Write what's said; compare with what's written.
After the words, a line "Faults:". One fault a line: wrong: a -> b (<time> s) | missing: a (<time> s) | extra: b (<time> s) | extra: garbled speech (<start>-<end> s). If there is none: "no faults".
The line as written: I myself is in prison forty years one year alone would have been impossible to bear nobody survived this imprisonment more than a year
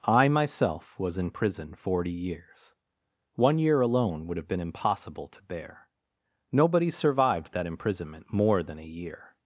I myself was in prison forty years one year alone would have been impossible to bear nobody survived that imprisonment more than a year
Faults:
wrong: is -> was (1.0 s)
wrong: this -> that (7.5 s)